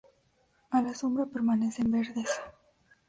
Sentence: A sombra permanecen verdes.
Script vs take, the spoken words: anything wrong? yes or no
yes